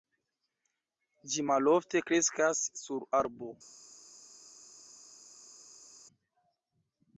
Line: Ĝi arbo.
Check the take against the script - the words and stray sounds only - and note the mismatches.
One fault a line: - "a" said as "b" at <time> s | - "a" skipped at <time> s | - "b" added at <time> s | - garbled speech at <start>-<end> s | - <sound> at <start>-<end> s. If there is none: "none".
- "malofte kreskas sur" added at 1.5 s